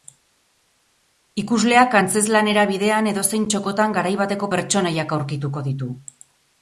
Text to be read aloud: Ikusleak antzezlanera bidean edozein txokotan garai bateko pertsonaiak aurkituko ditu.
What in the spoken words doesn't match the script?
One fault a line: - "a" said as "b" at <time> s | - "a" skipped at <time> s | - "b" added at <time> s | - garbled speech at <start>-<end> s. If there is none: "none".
none